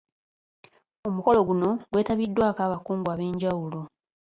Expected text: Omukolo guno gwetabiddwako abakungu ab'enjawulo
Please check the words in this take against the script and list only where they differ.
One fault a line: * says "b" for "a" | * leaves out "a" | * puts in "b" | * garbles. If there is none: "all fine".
all fine